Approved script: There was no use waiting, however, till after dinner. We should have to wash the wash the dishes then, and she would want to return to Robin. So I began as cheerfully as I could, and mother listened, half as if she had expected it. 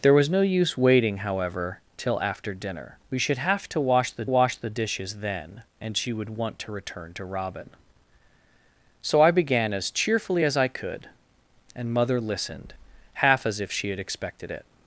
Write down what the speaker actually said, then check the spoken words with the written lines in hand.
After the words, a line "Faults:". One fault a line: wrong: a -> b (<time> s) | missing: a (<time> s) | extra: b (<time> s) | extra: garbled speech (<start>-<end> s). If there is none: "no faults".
There was no use waiting, however, till after dinner. We should have to wash the wash the dishes then, and she would want to return to Robin. So I began as cheerfully as I could, and mother listened, half as if she had expected it.
Faults:
no faults